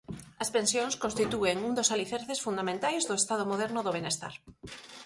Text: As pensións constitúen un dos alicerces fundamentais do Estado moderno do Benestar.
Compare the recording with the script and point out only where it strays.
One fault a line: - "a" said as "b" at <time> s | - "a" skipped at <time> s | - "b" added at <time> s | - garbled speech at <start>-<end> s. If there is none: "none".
none